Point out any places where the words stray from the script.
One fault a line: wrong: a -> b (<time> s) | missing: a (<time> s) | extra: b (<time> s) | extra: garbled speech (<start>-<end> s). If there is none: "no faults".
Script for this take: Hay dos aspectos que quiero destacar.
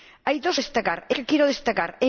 wrong: aspectos -> destacar (0.6 s)